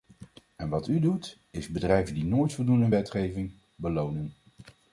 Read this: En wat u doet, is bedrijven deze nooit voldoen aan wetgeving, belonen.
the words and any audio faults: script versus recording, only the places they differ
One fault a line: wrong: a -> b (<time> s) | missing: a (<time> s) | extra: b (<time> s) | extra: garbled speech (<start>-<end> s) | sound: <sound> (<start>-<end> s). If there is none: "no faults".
wrong: deze -> die (2.1 s)